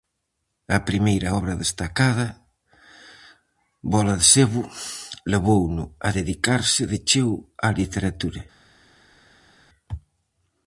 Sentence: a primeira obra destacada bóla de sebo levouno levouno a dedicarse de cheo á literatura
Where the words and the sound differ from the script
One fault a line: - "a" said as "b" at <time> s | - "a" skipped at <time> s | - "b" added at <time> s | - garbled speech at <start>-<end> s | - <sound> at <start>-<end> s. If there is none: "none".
- "levouno" skipped at 5.8 s